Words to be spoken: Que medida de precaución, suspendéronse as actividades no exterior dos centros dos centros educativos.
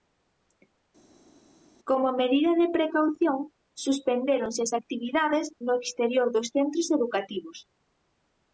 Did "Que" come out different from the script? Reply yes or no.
yes